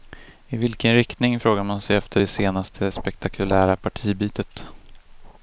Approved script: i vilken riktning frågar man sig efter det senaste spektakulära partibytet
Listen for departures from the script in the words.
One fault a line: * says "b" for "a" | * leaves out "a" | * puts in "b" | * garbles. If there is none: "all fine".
all fine